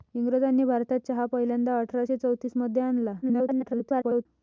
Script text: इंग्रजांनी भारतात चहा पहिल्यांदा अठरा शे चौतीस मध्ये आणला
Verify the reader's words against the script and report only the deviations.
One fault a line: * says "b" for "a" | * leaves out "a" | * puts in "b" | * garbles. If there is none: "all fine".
* garbles